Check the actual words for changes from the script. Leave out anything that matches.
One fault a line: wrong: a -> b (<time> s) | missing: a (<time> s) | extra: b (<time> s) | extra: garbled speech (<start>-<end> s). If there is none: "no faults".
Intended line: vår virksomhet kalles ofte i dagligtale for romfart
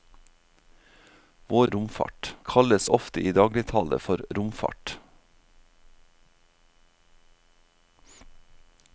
wrong: virksomhet -> romfart (1.7 s)